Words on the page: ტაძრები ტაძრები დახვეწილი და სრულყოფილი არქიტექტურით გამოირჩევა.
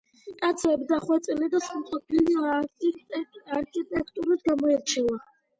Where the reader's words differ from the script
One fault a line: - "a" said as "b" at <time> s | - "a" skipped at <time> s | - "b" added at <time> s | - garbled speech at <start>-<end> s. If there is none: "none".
- "ტაძრები" skipped at 0.9 s